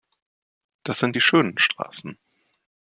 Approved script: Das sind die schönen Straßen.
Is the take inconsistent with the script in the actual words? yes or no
no